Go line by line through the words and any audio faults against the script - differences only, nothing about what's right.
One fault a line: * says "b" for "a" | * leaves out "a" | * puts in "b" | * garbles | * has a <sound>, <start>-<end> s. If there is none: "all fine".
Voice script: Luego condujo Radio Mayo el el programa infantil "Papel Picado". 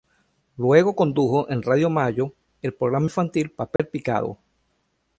* puts in "en"
* leaves out "el"
* has a dropout, 3.8-3.8 s